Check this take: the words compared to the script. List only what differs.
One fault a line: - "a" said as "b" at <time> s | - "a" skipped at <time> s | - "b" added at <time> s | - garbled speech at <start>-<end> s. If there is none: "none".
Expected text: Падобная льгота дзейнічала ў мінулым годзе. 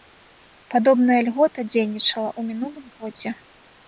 none